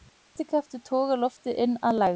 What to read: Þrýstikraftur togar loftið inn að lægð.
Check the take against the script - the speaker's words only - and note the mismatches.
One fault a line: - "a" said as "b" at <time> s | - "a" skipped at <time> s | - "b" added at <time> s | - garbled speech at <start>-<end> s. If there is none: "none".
none